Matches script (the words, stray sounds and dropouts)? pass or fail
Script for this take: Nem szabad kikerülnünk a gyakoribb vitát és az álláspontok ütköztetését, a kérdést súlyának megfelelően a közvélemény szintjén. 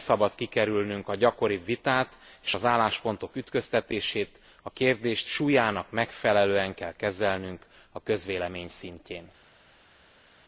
fail